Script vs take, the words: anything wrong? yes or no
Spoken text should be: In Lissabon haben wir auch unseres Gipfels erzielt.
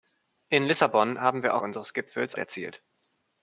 no